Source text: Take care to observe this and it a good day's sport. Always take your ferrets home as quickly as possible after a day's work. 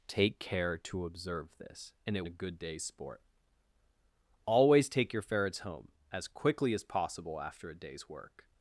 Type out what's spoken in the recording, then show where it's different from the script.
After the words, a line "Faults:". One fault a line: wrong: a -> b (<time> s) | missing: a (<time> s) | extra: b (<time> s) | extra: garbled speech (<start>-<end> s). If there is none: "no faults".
Take care to observe this and it a good day's sport. Always take your ferrets home as quickly as possible after a day's work.
Faults:
no faults